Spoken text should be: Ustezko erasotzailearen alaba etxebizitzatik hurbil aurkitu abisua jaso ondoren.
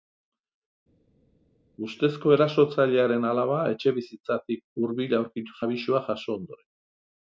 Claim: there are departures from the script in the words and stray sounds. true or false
false